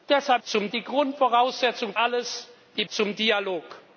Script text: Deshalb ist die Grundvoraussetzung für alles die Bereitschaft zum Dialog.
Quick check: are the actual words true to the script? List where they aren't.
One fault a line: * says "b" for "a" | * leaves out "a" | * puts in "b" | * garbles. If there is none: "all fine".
* says "zum" for "ist"
* leaves out "für"
* leaves out "Bereitschaft"